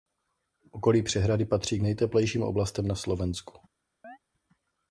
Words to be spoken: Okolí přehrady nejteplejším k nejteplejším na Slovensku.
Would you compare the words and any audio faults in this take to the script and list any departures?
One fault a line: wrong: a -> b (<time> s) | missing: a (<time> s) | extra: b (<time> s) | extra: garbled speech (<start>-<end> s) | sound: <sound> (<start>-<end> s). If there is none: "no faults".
wrong: nejteplejším -> patří (1.4 s)
extra: oblastem (2.4 s)
sound: chirp (4.0-4.2 s)